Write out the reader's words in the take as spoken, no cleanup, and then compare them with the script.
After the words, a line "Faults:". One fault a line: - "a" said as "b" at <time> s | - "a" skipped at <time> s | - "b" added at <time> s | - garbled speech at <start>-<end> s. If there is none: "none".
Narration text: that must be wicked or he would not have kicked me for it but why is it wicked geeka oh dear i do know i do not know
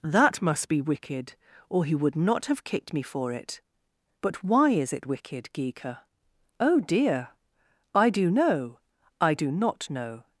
that must be wicked or he would not have kicked me for it but why is it wicked geeka oh dear i do know i do not know
Faults:
none